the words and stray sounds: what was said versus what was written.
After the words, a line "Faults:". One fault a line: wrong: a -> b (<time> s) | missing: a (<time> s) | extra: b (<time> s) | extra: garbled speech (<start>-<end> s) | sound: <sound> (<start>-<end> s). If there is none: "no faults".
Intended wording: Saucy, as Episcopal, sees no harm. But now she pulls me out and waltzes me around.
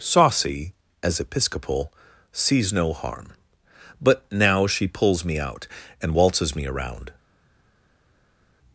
Saucy, as Episcopal, sees no harm. But now she pulls me out and waltzes me around.
Faults:
no faults